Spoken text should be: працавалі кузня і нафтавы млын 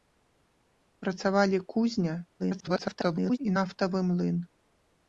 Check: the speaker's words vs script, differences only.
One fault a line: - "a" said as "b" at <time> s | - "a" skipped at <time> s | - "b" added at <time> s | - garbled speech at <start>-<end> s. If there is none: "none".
- garbled speech at 2.4-3.4 s